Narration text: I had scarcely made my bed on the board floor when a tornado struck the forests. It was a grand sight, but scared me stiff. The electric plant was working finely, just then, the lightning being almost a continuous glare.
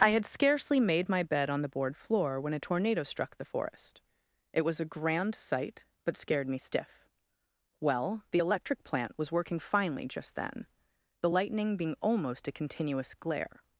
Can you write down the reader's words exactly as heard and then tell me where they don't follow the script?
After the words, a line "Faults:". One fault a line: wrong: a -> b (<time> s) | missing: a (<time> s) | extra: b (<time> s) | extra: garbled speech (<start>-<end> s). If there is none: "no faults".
I had scarcely made my bed on the board floor when a tornado struck the forest. It was a grand sight, but scared me stiff. Well, the electric plant was working finely, just then, the lightning being almost a continuous glare.
Faults:
wrong: forests -> forest (3.5 s)
extra: Well (7.8 s)